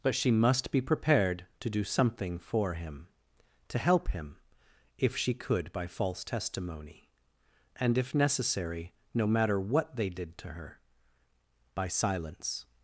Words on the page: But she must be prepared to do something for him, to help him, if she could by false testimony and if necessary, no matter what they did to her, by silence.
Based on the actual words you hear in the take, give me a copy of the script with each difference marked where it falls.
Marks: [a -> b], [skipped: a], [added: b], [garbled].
But she must be prepared to do something for him, to help him, if she could by false testimony and if necessary, no matter what they did to her, by silence.